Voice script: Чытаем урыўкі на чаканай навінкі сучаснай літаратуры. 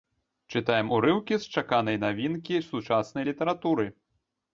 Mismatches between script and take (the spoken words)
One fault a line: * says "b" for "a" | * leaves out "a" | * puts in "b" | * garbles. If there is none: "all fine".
* says "з" for "на"